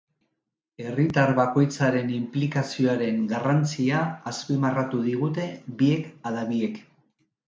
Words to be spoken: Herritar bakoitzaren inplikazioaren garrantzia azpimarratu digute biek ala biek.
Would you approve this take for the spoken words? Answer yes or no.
yes